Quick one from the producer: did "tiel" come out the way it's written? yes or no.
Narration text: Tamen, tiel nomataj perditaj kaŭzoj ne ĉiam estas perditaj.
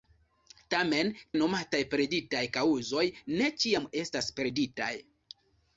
no